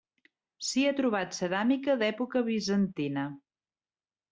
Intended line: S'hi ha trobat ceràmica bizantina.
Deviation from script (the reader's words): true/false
true